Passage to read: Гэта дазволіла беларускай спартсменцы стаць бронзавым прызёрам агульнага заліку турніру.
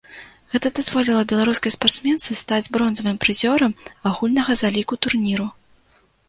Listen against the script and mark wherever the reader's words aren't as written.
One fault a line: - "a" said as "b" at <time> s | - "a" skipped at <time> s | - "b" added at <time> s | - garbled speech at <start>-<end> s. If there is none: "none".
none